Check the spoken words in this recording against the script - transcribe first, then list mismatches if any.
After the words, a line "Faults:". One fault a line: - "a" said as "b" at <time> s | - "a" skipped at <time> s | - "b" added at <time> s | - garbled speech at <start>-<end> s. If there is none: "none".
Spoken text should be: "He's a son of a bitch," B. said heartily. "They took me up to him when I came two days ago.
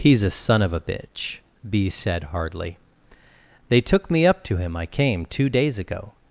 "He's a son of a bitch," B. said hardly. "They took me up to him I came two days ago.
Faults:
- "heartily" said as "hardly" at 2.2 s
- "when" skipped at 4.8 s